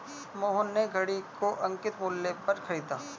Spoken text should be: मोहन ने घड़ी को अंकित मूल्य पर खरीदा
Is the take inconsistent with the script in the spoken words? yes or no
no